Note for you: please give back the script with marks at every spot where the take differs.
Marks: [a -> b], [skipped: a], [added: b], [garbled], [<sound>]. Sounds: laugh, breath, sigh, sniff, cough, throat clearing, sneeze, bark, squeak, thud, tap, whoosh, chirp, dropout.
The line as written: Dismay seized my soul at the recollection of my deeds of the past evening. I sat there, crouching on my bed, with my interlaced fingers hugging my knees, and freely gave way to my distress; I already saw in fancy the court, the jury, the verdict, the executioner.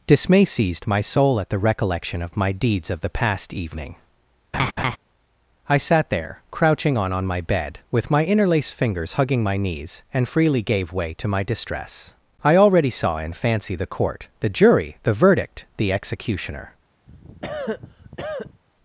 Dismay seized my soul at the recollection of my deeds of the past evening. [laugh] I sat there, crouching on [added: on] my bed, with my interlaced fingers hugging my knees, and freely gave way to my distress; I already saw in fancy the court, the jury, the verdict, the executioner. [cough]